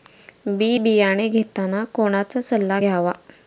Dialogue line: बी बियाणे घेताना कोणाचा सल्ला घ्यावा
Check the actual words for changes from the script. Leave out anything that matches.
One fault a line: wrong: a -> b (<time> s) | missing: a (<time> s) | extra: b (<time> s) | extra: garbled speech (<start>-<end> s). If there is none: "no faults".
no faults